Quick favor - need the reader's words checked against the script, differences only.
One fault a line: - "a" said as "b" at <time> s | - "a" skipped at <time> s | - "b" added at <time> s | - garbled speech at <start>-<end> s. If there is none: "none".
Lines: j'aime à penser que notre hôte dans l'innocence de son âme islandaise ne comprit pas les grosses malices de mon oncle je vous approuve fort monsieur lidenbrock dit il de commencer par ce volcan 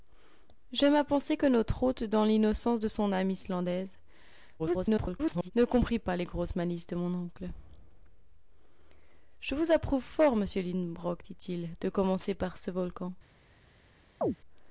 - garbled speech at 4.6-5.5 s